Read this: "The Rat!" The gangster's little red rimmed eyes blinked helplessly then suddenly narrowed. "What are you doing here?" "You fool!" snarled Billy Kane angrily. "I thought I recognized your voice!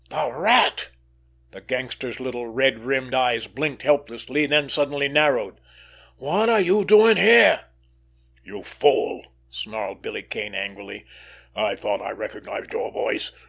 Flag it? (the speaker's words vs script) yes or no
no